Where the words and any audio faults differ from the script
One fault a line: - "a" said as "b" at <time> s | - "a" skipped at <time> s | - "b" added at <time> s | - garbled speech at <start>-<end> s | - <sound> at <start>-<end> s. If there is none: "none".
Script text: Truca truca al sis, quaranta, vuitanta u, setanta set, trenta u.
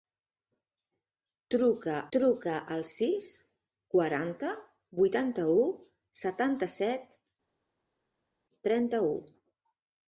none